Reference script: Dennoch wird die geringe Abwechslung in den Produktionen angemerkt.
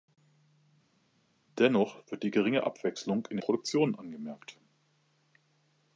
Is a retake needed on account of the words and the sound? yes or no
yes